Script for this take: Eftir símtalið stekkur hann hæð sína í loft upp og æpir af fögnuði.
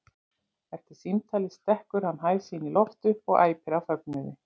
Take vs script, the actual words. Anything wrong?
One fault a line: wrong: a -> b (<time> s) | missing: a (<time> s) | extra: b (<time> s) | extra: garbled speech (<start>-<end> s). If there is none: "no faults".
no faults